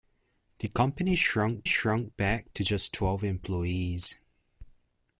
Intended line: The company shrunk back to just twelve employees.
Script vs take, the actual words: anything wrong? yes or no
yes